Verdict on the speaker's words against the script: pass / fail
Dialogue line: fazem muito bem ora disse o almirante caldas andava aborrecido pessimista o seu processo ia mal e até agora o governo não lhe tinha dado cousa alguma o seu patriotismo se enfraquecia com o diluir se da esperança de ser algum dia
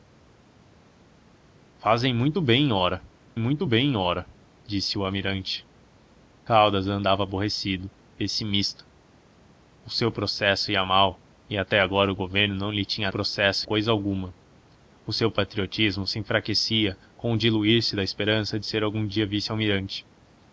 fail